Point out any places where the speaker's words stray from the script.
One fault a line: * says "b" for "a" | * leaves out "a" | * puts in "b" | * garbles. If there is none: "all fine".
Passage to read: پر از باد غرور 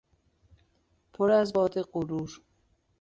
all fine